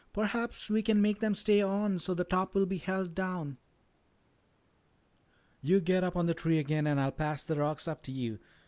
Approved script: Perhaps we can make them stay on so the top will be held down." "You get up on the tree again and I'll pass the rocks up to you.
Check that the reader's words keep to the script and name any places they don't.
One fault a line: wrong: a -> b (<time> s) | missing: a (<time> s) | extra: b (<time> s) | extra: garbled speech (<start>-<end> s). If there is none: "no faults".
no faults